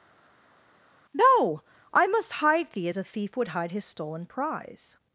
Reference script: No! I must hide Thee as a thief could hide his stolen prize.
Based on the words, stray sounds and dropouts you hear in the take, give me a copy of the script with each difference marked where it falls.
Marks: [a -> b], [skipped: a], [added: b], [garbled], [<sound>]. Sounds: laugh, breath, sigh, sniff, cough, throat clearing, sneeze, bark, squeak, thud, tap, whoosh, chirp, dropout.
No! I must hide Thee as a thief [could -> would] hide his stolen prize.